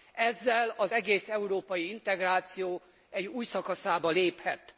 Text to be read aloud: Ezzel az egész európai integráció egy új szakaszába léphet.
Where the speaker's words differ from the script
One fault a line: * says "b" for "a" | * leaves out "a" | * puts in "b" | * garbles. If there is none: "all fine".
all fine